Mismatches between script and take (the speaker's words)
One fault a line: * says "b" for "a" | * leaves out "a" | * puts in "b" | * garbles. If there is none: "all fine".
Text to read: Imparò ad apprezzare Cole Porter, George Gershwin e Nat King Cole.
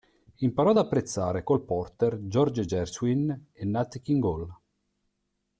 all fine